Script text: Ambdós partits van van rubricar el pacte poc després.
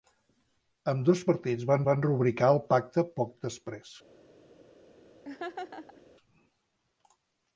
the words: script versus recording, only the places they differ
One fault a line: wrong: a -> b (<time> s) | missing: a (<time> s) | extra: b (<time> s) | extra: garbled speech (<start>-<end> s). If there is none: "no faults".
no faults